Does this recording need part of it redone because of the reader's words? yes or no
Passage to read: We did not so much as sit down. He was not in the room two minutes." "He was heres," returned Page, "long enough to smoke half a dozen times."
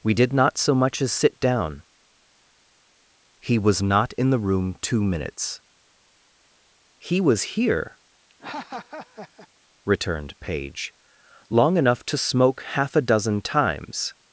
yes